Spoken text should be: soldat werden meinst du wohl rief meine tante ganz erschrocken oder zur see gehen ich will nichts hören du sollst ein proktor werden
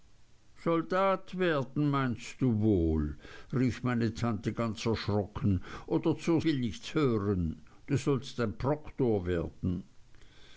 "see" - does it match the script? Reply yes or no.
no